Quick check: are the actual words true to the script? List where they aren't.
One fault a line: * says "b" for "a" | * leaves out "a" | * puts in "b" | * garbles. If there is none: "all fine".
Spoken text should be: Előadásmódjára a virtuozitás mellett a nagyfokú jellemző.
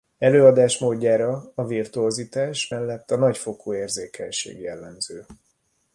* puts in "érzékenység"